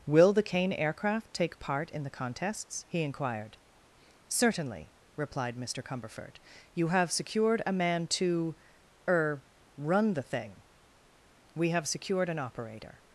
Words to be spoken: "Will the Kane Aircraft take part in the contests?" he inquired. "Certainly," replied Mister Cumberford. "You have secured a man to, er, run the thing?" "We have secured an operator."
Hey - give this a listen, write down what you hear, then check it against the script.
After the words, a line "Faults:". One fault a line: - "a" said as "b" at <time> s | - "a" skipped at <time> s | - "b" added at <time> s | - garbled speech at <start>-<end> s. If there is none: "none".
"Will the Kane Aircraft take part in the contests?" he inquired. "Certainly," replied Mister Cumberford. "You have secured a man to, er, run the thing?" "We have secured an operator."
Faults:
none